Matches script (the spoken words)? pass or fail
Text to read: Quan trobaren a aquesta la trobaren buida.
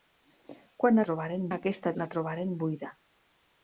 pass